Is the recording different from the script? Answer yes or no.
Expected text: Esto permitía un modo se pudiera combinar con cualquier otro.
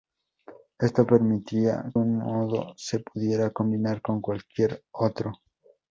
no